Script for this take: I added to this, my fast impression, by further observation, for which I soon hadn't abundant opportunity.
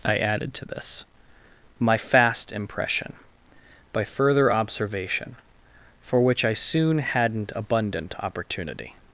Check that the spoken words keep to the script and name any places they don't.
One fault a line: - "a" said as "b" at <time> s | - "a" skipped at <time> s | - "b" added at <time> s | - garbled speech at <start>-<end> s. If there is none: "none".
none